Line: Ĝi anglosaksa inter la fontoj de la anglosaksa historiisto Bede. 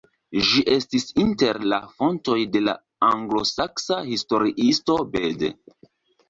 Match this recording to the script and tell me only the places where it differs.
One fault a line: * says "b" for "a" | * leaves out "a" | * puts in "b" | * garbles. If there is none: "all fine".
* says "estis" for "anglosaksa"